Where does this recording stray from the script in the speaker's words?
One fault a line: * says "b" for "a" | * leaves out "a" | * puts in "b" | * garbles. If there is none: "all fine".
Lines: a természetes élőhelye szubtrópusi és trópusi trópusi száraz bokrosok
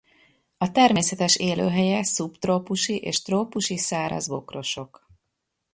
* leaves out "trópusi"